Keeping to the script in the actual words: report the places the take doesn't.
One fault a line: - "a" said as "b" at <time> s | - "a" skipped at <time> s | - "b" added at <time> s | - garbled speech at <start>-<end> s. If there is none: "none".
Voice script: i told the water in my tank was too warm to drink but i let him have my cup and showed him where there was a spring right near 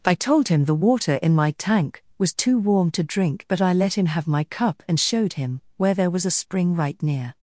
- "him" added at 0.5 s